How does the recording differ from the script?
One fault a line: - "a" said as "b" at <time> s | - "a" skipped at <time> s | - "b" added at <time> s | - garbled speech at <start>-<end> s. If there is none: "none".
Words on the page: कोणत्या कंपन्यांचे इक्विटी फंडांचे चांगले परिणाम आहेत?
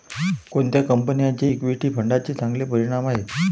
none